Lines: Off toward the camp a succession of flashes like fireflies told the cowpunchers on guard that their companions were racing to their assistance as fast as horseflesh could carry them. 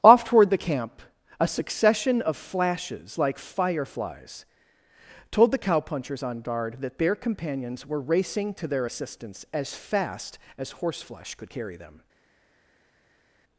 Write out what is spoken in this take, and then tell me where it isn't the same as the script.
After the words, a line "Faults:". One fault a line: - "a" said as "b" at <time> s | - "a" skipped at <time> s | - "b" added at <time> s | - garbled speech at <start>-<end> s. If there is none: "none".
Off toward the camp a succession of flashes like fireflies told the cowpunchers on guard that their companions were racing to their assistance as fast as horseflesh could carry them.
Faults:
none